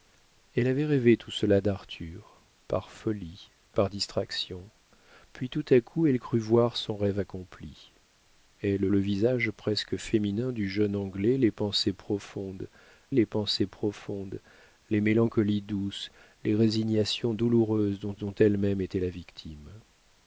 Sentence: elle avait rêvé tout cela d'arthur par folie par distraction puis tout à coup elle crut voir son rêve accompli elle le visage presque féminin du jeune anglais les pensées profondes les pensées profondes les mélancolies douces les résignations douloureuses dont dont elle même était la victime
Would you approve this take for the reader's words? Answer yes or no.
yes